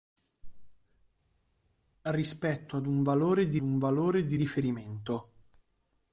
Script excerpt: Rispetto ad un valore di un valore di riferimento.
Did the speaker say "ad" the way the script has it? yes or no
yes